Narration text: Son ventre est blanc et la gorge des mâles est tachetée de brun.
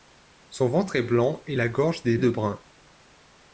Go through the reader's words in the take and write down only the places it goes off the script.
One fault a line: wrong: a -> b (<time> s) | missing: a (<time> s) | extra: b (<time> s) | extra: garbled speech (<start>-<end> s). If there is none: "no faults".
missing: mâles est tachetée (2.2 s)